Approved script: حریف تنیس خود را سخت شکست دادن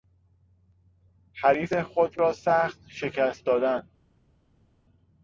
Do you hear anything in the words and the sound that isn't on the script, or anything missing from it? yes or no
yes